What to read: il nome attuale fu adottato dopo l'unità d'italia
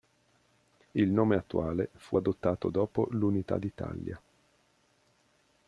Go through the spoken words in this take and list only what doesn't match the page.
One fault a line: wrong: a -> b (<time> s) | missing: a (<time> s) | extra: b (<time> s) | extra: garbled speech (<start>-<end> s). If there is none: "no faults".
no faults